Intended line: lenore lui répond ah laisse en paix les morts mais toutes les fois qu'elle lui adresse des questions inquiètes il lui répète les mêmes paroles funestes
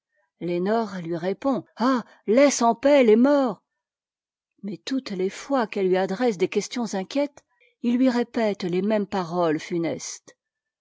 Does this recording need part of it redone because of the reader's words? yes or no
no